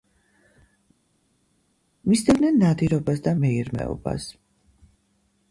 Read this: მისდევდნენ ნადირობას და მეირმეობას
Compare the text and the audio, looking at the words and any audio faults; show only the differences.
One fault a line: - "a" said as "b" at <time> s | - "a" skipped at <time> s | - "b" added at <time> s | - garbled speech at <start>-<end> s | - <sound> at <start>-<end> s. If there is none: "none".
none